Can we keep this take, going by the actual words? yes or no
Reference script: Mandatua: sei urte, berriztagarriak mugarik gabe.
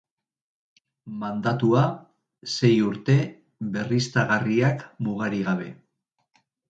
yes